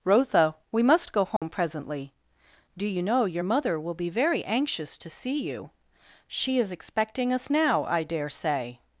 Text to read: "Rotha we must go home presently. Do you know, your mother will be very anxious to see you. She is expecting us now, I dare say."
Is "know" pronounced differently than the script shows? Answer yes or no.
no